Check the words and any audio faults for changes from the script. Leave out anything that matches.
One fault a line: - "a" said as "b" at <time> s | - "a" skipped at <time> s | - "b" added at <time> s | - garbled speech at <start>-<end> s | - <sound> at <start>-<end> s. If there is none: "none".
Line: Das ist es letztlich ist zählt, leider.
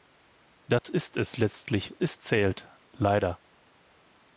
- dropout at 0.8-0.8 s